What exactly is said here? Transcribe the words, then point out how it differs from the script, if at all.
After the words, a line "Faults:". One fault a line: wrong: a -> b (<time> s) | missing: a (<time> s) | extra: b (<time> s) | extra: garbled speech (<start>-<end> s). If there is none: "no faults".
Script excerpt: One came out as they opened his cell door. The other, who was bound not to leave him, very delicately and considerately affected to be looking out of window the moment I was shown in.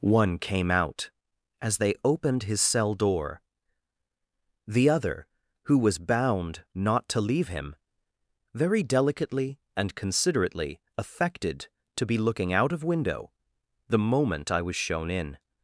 One came out as they opened his cell door. The other, who was bound not to leave him, very delicately and considerately affected to be looking out of window the moment I was shown in.
Faults:
no faults